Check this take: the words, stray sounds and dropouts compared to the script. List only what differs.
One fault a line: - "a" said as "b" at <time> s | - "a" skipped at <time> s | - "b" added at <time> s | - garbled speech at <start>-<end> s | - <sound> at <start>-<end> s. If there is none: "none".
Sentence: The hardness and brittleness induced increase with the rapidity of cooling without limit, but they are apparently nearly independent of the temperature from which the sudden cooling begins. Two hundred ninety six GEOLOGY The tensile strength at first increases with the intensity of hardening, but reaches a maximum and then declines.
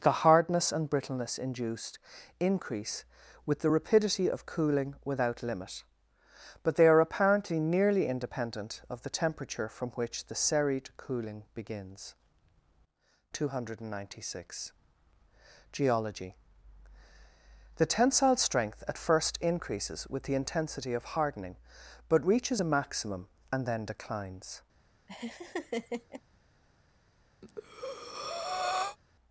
- "sudden" said as "serried" at 10.4 s
- laugh at 25.1-26.2 s
- breath at 27.4-29.0 s